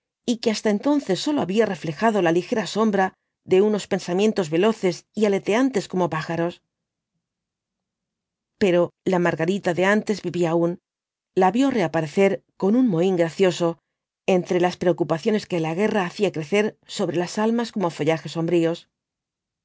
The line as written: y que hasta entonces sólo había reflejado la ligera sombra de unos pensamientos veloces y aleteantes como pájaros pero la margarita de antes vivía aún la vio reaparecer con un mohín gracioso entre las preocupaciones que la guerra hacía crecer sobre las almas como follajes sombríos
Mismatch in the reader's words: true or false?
false